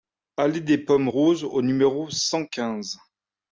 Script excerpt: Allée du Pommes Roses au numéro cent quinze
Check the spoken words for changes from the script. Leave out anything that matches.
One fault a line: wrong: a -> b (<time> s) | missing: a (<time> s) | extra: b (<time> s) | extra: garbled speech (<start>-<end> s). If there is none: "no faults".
wrong: du -> des (0.6 s)